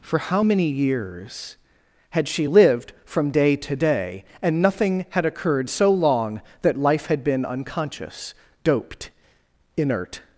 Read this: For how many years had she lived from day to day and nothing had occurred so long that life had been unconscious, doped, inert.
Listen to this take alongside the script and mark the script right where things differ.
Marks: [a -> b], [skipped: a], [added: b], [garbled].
For how many years had she lived from day to day and nothing had occurred so long that life had been unconscious, doped, inert.